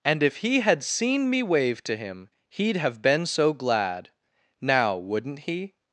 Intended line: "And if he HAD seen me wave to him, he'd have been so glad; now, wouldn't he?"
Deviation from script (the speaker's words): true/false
false